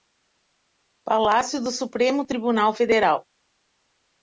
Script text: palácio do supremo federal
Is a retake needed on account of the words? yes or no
yes